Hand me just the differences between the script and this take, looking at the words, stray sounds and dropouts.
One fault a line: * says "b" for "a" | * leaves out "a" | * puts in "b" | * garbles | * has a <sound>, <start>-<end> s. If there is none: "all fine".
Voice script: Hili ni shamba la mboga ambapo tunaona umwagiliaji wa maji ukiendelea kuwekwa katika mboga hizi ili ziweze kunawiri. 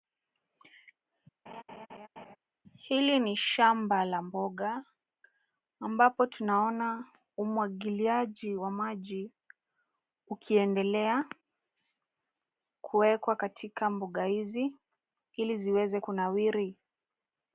* has a laugh, 1.5-2.4 s